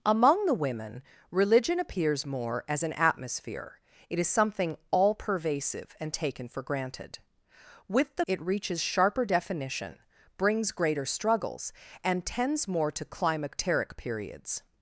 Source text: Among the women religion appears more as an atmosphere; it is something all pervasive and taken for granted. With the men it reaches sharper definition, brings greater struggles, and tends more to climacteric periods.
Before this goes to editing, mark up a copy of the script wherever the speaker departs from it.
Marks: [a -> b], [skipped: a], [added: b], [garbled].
Among the women religion appears more as an atmosphere; it is something all pervasive and taken for granted. With the [skipped: men] it reaches sharper definition, brings greater struggles, and tends more to climacteric periods.